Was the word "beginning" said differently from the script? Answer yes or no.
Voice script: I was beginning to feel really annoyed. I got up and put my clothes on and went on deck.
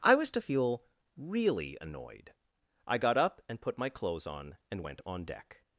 yes